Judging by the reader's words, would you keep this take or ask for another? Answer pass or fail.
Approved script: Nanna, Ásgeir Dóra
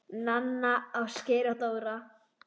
fail